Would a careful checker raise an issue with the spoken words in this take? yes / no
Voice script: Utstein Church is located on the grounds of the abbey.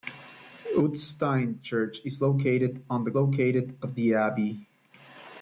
yes